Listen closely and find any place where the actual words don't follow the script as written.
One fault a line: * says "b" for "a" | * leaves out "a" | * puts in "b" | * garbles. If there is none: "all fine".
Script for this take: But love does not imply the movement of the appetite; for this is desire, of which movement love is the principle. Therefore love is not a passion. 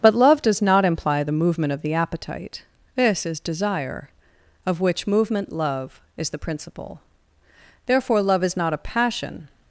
* leaves out "for"